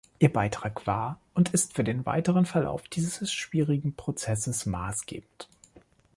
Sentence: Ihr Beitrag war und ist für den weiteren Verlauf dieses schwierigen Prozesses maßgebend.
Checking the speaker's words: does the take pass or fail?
pass